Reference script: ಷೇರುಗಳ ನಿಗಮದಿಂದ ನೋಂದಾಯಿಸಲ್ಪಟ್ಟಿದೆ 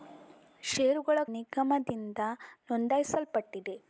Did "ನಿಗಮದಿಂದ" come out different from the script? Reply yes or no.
no